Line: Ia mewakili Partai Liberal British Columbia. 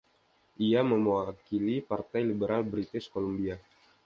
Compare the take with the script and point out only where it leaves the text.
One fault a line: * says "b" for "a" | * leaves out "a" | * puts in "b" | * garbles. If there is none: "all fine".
all fine